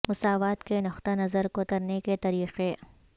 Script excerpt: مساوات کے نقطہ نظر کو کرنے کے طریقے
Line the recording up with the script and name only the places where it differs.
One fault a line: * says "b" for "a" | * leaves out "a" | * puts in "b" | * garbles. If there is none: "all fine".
all fine